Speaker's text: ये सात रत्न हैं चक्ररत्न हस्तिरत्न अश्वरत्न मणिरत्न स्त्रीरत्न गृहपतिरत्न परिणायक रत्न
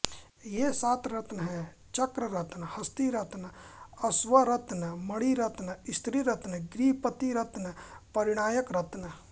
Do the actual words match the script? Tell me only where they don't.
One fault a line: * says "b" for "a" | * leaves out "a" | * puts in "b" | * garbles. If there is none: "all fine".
all fine